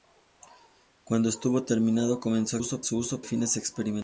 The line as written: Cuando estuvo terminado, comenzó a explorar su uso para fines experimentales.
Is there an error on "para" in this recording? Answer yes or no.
yes